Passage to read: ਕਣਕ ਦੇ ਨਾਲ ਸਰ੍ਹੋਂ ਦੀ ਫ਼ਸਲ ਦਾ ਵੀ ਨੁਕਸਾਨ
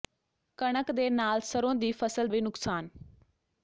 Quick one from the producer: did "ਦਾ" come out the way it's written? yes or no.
no